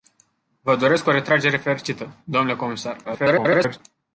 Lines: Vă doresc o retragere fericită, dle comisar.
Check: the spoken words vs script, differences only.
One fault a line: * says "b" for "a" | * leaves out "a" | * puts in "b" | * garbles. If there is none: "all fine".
* garbles